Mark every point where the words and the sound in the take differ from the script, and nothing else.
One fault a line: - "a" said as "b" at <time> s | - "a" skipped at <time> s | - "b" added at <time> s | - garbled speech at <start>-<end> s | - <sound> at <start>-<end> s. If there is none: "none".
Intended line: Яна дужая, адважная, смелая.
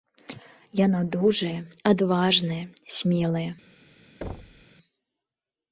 - thud at 4.2-4.7 s